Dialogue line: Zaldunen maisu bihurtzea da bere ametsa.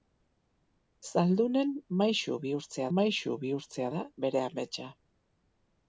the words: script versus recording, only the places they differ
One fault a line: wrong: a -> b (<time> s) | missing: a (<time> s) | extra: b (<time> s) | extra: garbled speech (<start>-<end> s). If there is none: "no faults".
extra: maisu bihurtzea (3.0 s)